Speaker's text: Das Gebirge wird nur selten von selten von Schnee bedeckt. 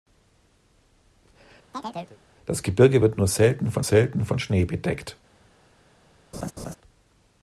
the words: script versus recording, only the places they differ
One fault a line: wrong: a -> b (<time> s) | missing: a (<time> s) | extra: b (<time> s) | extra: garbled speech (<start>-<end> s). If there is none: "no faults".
no faults